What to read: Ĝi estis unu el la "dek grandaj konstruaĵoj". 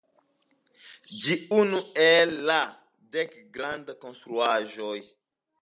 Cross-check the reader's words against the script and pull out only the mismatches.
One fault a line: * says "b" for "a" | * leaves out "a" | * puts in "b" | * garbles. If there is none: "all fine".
* leaves out "estis"